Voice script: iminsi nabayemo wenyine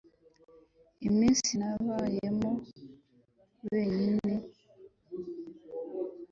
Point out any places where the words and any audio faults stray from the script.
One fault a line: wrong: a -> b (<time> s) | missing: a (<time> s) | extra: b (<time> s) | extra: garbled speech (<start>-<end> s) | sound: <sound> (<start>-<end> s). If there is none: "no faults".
no faults